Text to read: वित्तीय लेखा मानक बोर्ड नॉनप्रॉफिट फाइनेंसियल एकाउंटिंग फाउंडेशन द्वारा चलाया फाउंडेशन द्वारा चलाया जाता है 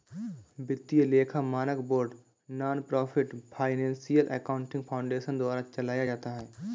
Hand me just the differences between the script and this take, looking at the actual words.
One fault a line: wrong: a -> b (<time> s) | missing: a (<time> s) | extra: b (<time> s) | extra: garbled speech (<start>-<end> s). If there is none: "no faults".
missing: फाउंडेशन द्वारा चलाया (6.0 s)